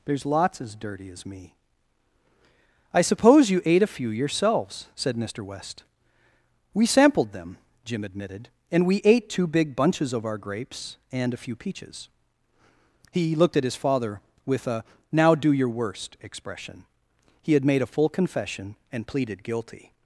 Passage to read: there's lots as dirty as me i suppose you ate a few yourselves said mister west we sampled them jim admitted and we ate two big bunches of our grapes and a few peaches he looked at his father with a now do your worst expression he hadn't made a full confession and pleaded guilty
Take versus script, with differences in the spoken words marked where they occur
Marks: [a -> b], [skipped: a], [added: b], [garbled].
there's lots as dirty as me i suppose you ate a few yourselves said mister west we sampled them jim admitted and we ate two big bunches of our grapes and a few peaches he looked at his father with a now do your worst expression he [hadn't -> had] made a full confession and pleaded guilty